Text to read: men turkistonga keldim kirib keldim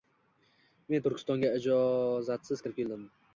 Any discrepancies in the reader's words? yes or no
yes